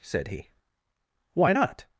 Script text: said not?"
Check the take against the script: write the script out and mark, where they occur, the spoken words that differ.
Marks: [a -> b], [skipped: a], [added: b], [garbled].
said [added: he Why] not?"